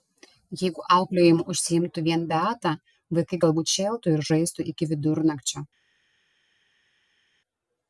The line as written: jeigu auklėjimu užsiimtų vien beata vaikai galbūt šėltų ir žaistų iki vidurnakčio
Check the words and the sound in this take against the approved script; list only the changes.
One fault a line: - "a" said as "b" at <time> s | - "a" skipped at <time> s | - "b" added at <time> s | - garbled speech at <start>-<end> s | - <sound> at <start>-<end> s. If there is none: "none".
none